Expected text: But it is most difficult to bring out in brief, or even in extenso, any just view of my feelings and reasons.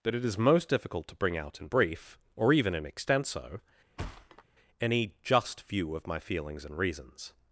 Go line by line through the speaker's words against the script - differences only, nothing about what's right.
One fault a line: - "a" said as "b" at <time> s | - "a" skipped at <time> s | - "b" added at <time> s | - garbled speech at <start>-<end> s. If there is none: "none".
- "But" said as "That" at 0.0 s